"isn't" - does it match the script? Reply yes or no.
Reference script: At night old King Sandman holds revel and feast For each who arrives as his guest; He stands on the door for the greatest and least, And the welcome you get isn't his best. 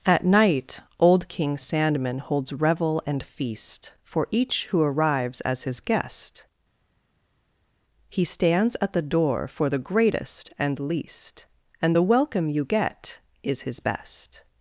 no